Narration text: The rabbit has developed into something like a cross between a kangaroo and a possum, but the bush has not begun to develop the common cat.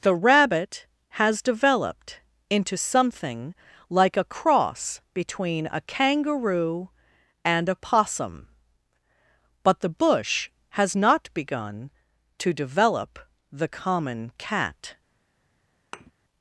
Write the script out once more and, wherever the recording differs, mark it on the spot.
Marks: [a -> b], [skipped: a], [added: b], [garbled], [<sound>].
The rabbit has developed into something like a cross between a kangaroo and a possum, but the bush has not begun to develop the common cat. [thud]